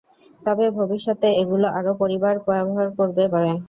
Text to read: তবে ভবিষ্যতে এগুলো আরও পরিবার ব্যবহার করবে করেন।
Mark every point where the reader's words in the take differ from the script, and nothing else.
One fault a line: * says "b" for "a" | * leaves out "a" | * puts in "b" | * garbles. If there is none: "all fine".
all fine